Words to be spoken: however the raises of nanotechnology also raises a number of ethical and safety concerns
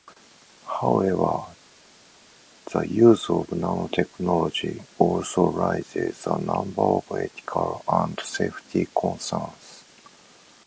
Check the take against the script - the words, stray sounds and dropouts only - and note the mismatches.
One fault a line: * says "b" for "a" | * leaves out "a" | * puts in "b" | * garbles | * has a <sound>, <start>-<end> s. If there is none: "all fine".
* says "use" for "raises"